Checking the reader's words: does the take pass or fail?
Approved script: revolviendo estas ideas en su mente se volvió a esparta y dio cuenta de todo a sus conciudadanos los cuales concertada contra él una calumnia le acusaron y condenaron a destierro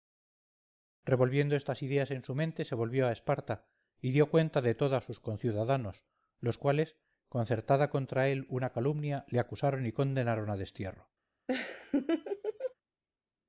pass